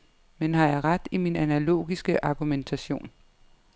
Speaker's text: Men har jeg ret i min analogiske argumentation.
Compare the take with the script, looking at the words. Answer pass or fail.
pass